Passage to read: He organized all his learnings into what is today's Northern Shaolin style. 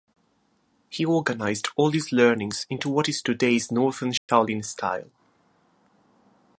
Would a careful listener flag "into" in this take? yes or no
no